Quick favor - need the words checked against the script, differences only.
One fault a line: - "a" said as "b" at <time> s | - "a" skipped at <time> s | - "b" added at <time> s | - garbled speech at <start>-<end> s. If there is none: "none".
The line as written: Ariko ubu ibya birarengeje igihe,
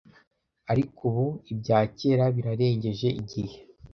- "kera" added at 2.0 s